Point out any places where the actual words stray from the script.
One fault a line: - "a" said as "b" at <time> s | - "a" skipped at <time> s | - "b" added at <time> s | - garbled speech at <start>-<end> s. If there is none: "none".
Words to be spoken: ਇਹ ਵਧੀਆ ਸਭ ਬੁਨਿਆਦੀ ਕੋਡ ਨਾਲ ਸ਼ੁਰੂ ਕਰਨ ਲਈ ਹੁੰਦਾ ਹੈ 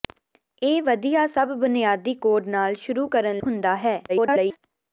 - "ਲਈ" skipped at 3.4 s
- garbled speech at 4.1-4.6 s